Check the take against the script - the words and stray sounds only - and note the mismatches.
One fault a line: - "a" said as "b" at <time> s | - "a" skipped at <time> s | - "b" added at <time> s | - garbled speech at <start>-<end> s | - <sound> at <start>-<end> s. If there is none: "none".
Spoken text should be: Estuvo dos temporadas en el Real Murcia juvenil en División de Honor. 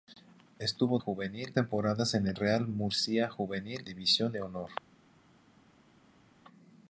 - "dos" said as "juvenil" at 1.0 s
- "en" skipped at 3.8 s